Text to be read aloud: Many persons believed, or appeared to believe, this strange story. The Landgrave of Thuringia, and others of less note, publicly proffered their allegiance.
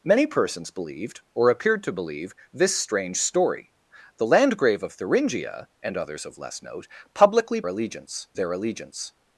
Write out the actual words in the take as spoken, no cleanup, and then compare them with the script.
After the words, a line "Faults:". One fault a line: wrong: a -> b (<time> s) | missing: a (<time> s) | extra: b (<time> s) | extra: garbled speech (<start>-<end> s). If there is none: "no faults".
Many persons believed, or appeared to believe, this strange story. The Landgrave of Thuringia, and others of less note, publicly allegiance their allegiance.
Faults:
wrong: proffered -> allegiance (7.7 s)